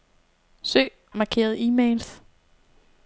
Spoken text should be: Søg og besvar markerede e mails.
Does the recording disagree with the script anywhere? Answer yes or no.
yes